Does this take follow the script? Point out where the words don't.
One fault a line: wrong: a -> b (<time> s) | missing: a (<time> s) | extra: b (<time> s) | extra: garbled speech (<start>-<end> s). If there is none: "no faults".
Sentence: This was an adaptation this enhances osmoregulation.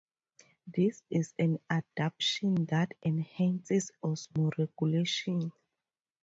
wrong: was -> is (1.1 s)
wrong: this -> that (2.6 s)